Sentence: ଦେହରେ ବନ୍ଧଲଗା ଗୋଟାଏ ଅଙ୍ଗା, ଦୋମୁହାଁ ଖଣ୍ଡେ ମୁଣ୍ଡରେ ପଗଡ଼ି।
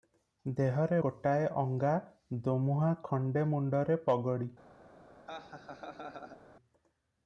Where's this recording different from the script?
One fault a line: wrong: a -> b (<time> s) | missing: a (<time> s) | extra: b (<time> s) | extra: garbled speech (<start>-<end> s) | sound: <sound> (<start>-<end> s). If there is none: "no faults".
missing: ବନ୍ଧଲଗା (1.0 s)
sound: laugh (5.3-6.4 s)